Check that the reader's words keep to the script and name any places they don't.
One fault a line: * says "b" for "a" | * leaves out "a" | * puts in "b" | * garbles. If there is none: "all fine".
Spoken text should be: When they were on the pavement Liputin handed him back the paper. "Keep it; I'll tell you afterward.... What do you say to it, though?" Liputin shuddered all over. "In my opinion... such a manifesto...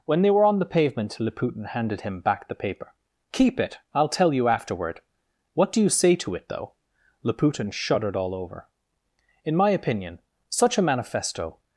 all fine